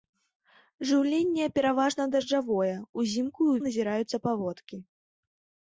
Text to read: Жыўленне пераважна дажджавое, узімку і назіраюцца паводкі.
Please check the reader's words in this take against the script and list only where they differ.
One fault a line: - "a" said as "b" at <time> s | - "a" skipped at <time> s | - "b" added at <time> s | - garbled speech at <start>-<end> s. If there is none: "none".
none